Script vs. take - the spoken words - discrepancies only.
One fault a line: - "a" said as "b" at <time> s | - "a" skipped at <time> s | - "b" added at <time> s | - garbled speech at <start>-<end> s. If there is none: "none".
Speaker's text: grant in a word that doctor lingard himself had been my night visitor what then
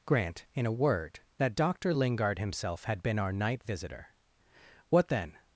- "my" said as "our" at 3.2 s